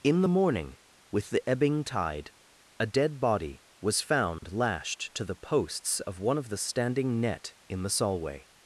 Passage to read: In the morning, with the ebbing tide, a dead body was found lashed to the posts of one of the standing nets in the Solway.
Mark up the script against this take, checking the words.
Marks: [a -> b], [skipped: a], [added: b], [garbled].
In the morning, with the ebbing tide, a dead body was found lashed to the posts of one of the standing [nets -> net] in the Solway.